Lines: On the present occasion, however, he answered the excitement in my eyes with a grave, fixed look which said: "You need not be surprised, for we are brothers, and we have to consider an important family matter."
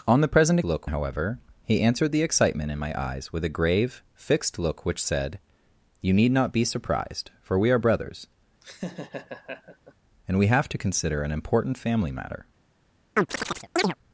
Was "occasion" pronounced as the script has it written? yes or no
no